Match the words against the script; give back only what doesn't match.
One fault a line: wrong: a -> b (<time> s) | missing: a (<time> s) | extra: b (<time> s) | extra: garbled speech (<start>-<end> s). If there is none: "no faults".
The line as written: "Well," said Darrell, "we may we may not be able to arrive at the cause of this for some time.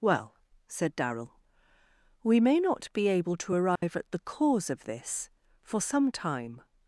missing: we may (2.6 s)